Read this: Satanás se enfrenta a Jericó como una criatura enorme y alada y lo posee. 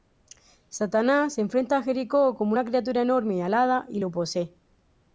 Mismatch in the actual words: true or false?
false